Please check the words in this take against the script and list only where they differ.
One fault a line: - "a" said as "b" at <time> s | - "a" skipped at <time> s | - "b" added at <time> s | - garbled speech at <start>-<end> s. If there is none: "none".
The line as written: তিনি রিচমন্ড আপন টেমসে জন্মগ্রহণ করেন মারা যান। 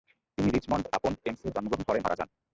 none